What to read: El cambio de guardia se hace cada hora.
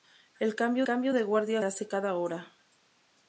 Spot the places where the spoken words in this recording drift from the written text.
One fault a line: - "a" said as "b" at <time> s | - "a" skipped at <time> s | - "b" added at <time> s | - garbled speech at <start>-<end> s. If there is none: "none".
- "cambio" added at 0.8 s
- "se" skipped at 1.6 s